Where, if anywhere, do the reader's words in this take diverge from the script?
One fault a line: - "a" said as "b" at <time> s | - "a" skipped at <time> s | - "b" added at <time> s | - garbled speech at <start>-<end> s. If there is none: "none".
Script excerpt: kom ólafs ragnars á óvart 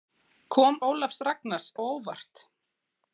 none